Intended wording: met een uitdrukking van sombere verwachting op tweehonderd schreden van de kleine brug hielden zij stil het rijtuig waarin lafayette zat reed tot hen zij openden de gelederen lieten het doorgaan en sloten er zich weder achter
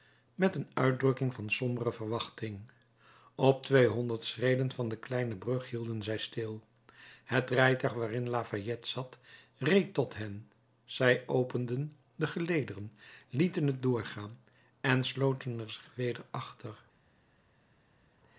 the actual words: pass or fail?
pass